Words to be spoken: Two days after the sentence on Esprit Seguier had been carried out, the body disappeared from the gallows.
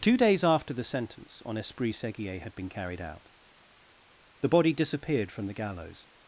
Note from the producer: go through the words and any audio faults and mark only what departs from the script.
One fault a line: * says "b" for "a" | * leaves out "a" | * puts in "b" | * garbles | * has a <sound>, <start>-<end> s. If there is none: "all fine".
all fine